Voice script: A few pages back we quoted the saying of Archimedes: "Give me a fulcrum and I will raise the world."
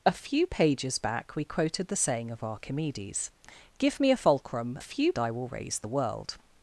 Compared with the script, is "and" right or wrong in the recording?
wrong